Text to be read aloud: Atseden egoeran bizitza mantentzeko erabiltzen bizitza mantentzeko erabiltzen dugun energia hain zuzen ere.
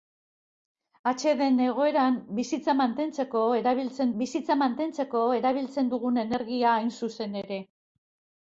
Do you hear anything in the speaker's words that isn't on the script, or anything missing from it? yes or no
no